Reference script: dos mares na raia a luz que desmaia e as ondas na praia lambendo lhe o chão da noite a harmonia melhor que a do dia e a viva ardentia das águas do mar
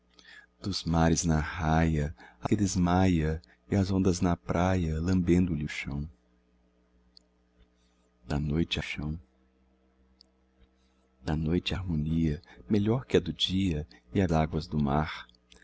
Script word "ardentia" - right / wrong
wrong